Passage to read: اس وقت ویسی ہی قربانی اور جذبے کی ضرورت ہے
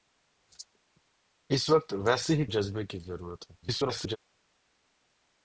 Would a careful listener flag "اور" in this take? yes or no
yes